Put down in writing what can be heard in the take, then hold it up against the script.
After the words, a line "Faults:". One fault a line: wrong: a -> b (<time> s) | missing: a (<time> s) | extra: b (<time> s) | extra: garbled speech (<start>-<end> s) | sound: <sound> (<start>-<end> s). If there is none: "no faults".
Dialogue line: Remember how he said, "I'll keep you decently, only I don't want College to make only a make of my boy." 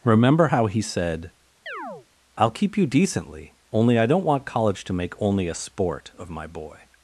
Remember how he said, "I'll keep you decently, only I don't want College to make only a sport of my boy."
Faults:
sound: chirp (1.7-2.1 s)
wrong: make -> sport (5.6 s)